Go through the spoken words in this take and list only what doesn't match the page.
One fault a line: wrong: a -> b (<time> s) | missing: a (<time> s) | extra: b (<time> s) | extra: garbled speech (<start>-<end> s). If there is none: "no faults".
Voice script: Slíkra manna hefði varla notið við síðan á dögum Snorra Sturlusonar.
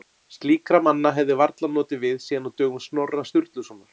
no faults